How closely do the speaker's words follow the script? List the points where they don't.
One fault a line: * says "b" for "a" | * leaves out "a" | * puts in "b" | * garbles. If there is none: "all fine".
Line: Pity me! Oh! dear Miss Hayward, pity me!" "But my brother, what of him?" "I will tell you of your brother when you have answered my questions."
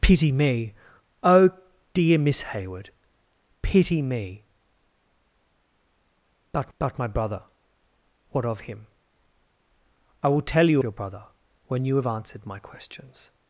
* puts in "but"
* leaves out "of"